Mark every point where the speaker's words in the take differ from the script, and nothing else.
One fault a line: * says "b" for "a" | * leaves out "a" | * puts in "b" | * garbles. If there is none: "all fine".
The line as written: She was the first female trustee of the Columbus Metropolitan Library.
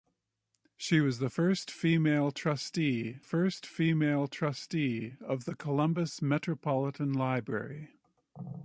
* puts in "first female trustee"